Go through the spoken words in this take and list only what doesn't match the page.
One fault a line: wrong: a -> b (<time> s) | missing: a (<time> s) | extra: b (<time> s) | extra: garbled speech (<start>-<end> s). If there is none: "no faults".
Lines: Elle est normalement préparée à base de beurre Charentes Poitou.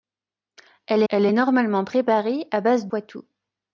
extra: elle (1.1 s)
missing: de beurre Charentes (2.9 s)